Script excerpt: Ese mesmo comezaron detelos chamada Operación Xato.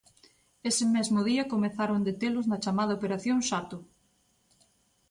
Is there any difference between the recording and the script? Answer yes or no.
yes